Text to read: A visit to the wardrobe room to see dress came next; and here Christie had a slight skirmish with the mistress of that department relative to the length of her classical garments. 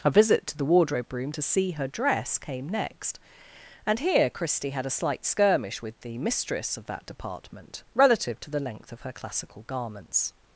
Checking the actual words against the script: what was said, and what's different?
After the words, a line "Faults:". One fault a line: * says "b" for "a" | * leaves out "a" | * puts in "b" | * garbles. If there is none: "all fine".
A visit to the wardrobe room to see her dress came next; and here Christie had a slight skirmish with the mistress of that department relative to the length of her classical garments.
Faults:
* puts in "her"